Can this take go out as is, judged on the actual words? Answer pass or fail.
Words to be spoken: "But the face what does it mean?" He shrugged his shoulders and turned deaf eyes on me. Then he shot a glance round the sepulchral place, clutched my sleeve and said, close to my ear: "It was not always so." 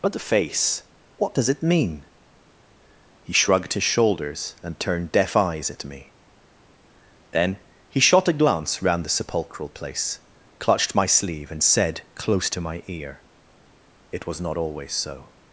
fail